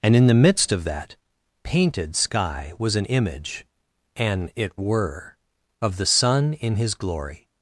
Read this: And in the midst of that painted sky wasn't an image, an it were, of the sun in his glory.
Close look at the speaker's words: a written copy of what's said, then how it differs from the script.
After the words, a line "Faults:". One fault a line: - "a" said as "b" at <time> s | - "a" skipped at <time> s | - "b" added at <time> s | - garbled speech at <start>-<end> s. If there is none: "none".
And in the midst of that painted sky was an image, an it were, of the sun in his glory.
Faults:
- "wasn't" said as "was" at 2.8 s